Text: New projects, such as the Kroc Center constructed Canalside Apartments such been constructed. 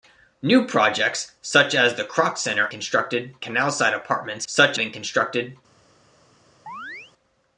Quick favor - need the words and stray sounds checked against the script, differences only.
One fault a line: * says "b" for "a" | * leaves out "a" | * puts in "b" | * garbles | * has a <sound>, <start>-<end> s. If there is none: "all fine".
* has a chirp, 6.7-7.1 s